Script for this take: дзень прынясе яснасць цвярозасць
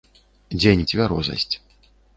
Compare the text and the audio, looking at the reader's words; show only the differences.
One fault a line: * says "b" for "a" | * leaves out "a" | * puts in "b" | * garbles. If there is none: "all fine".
* leaves out "прынясе яснасць"